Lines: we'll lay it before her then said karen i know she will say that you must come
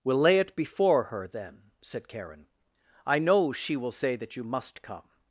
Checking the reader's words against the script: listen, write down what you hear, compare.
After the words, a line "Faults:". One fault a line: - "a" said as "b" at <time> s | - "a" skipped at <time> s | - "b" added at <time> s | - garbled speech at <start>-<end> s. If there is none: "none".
we'll lay it before her then said karen i know she will say that you must come
Faults:
none